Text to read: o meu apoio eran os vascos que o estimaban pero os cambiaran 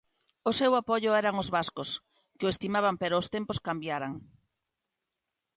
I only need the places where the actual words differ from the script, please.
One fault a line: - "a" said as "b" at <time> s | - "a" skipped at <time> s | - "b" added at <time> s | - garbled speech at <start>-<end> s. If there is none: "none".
- "meu" said as "seu" at 0.6 s
- "tempos" added at 3.4 s